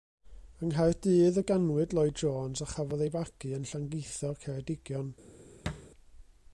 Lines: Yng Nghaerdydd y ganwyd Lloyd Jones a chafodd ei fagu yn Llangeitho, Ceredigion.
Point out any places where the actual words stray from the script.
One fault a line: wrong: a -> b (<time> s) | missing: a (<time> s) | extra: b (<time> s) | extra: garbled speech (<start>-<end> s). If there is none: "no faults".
no faults